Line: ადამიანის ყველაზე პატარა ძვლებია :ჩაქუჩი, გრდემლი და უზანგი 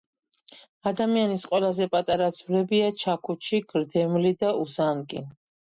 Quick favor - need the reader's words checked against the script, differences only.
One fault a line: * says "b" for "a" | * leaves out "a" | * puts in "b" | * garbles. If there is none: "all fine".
all fine